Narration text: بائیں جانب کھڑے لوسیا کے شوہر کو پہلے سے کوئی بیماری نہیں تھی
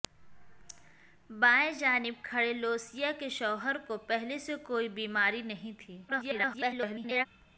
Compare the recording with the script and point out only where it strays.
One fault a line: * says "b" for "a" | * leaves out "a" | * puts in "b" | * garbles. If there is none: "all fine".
* garbles